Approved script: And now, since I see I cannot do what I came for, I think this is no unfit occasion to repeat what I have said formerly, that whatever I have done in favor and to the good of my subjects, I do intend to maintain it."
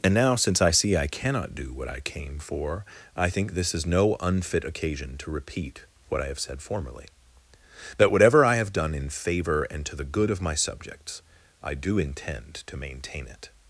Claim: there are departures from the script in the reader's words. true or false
false